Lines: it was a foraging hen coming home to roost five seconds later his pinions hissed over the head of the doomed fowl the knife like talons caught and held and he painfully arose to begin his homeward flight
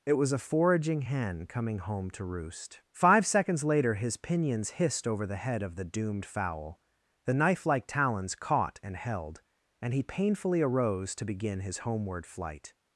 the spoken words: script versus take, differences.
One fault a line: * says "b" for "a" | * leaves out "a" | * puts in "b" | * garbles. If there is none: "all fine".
all fine